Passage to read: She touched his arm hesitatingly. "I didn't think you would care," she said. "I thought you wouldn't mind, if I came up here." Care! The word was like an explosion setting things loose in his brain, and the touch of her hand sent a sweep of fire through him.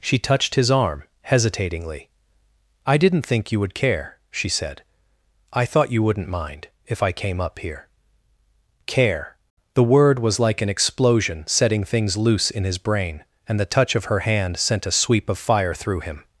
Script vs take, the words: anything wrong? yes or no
no